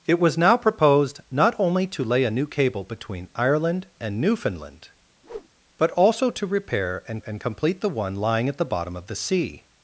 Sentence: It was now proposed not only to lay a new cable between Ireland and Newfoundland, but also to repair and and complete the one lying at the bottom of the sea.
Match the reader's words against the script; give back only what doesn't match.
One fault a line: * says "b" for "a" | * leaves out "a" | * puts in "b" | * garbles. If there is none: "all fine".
all fine